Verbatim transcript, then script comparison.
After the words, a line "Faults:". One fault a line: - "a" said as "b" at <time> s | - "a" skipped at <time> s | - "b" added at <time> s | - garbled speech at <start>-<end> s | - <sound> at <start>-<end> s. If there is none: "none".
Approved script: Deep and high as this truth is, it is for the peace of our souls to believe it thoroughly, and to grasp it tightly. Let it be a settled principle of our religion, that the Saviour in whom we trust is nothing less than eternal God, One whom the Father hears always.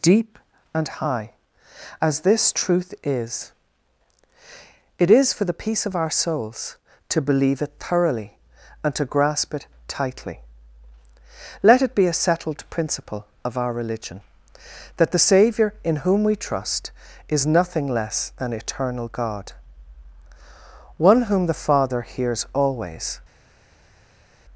Deep and high as this truth is, it is for the peace of our souls to believe it thoroughly, and to grasp it tightly. Let it be a settled principle of our religion, that the Saviour in whom we trust is nothing less than eternal God, One whom the Father hears always.
Faults:
none